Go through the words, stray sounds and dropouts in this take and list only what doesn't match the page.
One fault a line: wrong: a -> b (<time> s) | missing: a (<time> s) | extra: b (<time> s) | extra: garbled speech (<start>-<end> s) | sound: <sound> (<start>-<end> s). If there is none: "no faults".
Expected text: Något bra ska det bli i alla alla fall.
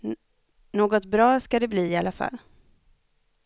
missing: alla (2.1 s)